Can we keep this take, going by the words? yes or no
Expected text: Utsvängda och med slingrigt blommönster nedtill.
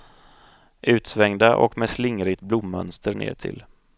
yes